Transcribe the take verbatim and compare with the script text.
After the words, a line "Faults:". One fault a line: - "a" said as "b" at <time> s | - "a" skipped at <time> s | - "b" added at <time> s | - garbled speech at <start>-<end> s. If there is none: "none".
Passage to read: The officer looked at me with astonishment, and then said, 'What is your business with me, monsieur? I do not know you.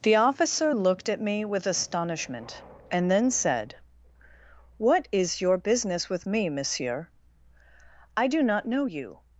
The officer looked at me with astonishment, and then said, 'What is your business with me, monsieur? I do not know you.
Faults:
none